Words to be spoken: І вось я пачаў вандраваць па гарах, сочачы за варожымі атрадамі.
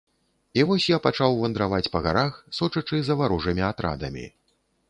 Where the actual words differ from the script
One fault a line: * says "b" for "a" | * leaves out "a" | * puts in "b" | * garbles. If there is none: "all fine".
all fine